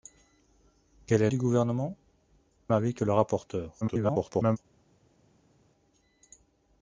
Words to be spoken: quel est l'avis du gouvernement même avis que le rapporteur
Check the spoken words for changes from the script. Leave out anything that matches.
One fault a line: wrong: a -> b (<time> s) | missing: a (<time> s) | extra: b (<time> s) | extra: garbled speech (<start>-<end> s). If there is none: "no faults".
missing: l'avis (1.3 s)
missing: même (2.0 s)
extra: garbled speech (3.8-4.6 s)